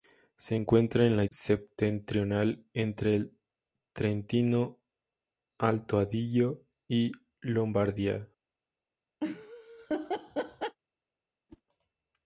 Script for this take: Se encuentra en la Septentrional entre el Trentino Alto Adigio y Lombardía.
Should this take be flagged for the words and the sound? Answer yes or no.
yes